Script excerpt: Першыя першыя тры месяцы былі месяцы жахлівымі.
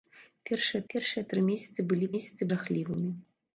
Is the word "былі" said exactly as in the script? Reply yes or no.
yes